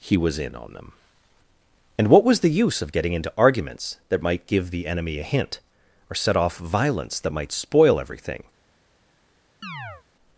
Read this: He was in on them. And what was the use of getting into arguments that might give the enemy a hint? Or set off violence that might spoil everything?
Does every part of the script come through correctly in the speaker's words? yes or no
yes